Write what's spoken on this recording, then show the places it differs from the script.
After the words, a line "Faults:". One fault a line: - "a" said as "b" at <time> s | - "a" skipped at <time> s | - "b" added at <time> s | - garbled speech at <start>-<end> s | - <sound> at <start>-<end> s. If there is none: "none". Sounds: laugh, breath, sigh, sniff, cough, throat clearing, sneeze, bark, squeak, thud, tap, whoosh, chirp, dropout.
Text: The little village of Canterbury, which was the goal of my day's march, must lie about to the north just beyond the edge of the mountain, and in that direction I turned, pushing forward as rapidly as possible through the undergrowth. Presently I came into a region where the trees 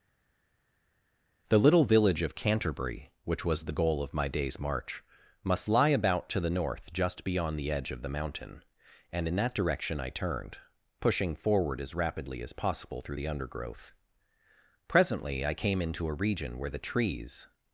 The little village of Canterbury, which was the goal of my day's march, must lie about to the north just beyond the edge of the mountain, and in that direction I turned, pushing forward as rapidly as possible through the undergrowth. Presently I came into a region where the trees
Faults:
none